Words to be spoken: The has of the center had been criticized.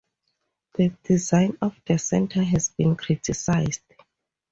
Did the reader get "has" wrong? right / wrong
wrong